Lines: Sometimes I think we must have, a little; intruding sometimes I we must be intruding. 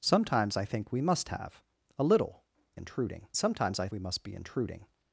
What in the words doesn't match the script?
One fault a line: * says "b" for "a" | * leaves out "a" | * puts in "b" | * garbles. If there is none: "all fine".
all fine